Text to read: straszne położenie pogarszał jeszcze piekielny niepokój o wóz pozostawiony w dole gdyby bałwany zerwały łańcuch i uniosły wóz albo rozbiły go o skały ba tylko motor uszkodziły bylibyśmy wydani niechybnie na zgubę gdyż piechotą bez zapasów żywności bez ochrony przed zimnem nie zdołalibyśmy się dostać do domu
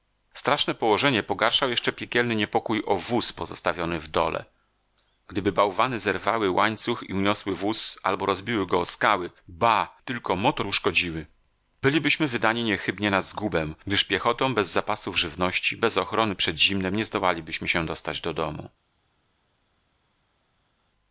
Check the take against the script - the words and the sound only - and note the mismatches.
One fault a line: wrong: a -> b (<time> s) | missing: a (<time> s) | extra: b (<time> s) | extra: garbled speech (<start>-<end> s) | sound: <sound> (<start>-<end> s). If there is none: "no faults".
no faults